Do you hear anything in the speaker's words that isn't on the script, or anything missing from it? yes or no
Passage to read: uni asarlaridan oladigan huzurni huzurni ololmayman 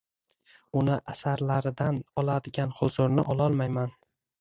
yes